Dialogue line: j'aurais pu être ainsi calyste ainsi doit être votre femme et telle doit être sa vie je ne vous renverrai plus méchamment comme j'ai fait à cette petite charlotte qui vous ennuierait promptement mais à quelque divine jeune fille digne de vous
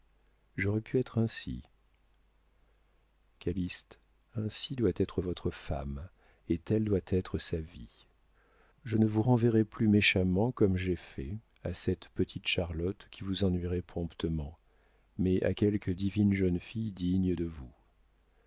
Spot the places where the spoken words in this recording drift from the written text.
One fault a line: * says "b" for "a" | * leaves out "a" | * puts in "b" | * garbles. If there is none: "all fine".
all fine